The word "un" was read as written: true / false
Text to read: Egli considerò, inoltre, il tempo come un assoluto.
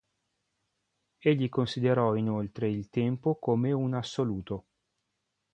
true